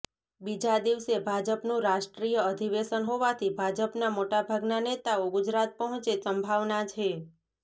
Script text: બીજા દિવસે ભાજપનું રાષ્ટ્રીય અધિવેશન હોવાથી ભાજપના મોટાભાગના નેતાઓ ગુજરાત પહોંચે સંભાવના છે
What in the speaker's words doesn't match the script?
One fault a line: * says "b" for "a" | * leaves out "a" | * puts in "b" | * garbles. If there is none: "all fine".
all fine